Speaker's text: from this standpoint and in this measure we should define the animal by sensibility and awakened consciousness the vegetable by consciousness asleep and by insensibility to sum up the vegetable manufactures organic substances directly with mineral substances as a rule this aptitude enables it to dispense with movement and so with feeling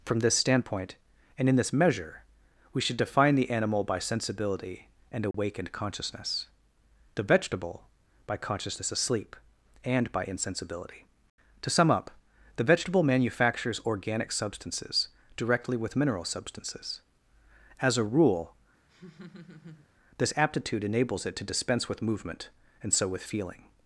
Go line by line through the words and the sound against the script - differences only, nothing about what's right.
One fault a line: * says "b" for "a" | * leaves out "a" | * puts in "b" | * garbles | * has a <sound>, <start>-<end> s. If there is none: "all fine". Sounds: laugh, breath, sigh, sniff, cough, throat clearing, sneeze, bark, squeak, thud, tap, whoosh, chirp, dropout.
* has a dropout, 5.3-5.3 s
* has a laugh, 18.9-19.9 s